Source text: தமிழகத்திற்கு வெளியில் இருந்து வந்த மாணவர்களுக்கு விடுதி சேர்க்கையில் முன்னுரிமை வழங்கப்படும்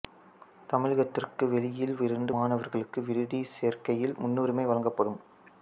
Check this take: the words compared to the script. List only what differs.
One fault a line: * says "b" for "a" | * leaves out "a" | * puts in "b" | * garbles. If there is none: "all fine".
* leaves out "வந்த"